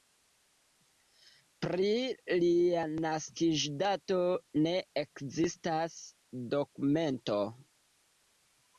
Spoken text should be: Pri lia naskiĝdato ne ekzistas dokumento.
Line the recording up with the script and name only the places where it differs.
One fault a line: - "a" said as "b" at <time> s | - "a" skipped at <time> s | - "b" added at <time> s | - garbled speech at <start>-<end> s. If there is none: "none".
none